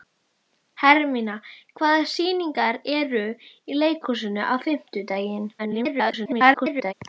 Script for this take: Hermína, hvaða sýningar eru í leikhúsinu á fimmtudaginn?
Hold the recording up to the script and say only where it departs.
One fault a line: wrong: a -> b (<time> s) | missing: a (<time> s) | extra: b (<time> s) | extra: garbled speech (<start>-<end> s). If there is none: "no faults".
extra: garbled speech (5.6-6.9 s)